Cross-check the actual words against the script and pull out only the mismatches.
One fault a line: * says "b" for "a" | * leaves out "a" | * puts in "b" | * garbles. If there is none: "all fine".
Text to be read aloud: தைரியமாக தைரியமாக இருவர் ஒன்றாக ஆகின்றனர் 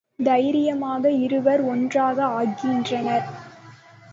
* leaves out "தைரியமாக"